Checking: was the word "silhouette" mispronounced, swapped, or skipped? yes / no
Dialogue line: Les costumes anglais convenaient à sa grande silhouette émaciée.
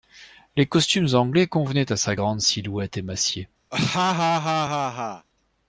no